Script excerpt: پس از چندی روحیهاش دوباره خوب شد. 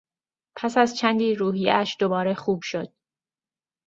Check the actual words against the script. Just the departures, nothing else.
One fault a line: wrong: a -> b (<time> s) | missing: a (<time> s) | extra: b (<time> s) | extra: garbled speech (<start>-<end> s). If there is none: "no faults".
no faults